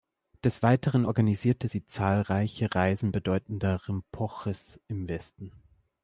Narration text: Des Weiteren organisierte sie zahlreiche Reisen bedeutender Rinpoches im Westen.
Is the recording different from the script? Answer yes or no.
no